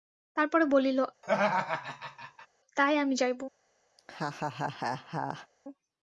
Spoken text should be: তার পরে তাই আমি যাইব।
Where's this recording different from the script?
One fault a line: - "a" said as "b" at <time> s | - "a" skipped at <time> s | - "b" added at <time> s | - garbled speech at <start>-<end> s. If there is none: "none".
- "বলিল" added at 0.7 s